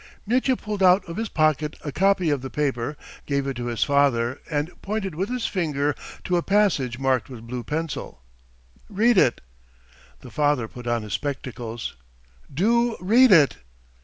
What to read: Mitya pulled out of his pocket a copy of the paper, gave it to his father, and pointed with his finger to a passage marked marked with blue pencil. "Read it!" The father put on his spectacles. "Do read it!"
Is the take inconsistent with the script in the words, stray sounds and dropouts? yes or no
yes